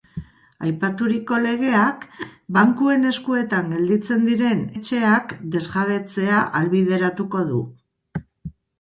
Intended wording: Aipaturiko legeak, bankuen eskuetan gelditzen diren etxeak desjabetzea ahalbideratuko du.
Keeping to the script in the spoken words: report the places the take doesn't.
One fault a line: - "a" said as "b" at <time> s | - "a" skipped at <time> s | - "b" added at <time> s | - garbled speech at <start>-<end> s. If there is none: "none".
none